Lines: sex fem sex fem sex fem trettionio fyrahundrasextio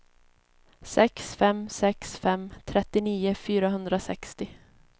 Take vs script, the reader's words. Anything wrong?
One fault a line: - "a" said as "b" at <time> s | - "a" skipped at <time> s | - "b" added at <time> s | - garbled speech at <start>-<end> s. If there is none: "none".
- "sex fem" skipped at 2.5 s